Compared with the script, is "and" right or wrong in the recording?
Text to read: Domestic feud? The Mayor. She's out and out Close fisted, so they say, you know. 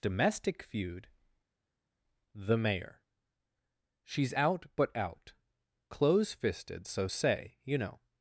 wrong